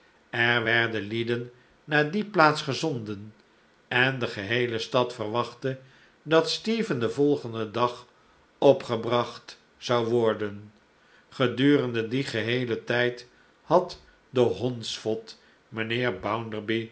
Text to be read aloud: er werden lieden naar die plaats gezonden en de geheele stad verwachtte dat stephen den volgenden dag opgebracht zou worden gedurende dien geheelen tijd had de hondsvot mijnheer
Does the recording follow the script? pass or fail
pass